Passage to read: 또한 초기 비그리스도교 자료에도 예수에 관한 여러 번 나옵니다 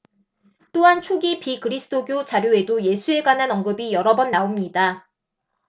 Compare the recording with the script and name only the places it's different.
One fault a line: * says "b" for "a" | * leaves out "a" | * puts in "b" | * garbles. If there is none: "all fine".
* puts in "언급이"